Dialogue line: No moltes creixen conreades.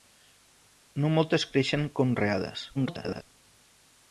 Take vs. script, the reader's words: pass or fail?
fail